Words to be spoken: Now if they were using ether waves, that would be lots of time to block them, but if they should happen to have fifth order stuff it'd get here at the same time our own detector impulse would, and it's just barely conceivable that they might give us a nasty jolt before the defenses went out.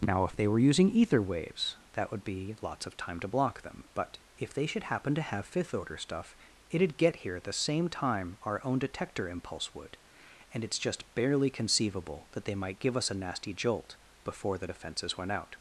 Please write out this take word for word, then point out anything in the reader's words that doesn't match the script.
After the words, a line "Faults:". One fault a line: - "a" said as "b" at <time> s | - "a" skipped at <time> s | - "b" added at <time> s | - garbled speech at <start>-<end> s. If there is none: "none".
Now if they were using ether waves, that would be lots of time to block them, but if they should happen to have fifth order stuff it'd get here at the same time our own detector impulse would, and it's just barely conceivable that they might give us a nasty jolt before the defenses went out.
Faults:
none